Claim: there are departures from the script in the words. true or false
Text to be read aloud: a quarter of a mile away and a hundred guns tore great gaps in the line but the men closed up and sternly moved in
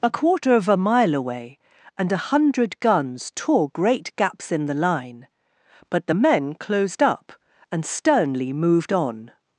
true